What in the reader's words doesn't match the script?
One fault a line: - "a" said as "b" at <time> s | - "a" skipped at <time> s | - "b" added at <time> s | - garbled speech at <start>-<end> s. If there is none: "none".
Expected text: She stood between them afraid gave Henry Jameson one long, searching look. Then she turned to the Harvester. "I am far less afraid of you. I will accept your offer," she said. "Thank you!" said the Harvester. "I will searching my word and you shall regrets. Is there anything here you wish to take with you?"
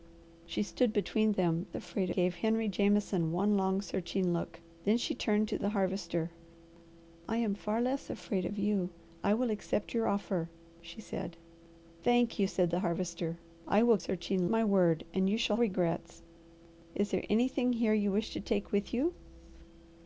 none